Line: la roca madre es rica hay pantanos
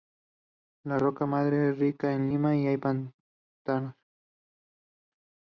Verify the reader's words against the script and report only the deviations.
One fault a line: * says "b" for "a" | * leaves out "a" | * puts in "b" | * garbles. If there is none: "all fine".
* puts in "en lima y"